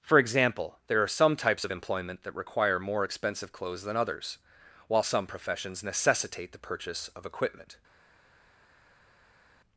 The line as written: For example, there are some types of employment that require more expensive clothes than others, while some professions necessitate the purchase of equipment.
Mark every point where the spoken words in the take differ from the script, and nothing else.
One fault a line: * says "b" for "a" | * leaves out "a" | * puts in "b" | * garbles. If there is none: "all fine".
all fine